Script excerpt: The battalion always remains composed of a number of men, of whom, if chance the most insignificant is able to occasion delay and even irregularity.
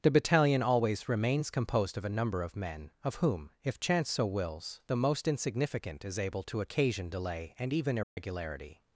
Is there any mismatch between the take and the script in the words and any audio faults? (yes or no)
yes